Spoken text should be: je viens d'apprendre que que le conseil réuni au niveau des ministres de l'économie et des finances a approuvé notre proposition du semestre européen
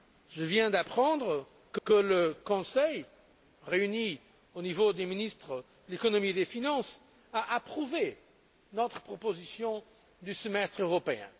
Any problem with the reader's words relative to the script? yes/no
no